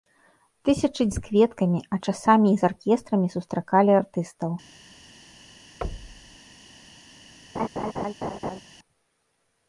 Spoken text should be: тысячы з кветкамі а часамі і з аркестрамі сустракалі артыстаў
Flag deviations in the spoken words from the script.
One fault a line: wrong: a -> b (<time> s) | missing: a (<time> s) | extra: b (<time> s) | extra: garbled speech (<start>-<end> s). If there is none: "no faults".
no faults